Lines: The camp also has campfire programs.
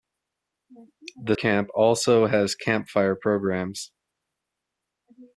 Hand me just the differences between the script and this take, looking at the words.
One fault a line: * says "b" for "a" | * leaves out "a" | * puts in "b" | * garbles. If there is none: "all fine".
all fine